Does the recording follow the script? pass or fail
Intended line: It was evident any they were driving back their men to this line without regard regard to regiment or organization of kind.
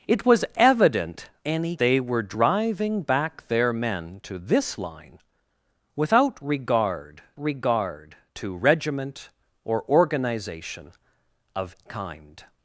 pass